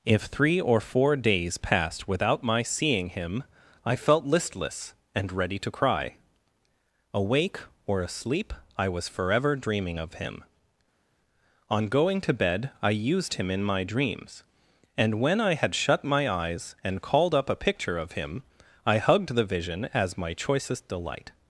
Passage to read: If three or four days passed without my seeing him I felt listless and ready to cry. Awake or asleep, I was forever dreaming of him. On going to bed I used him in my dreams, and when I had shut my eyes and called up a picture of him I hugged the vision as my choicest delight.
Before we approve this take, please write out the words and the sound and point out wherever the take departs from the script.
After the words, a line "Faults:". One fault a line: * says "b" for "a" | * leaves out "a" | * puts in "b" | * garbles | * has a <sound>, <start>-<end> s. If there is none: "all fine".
If three or four days passed without my seeing him I felt listless and ready to cry. Awake or asleep, I was forever dreaming of him. On going to bed I used him in my dreams, and when I had shut my eyes and called up a picture of him I hugged the vision as my choicest delight.
Faults:
all fine